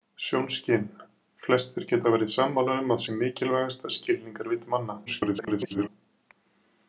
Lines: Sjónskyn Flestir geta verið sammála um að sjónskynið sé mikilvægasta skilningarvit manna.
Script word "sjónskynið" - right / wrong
wrong